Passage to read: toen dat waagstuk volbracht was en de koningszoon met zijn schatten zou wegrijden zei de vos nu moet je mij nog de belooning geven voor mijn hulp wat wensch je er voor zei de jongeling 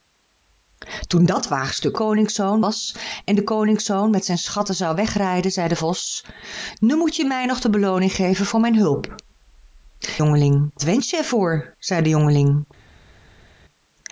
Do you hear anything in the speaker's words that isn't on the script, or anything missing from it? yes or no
yes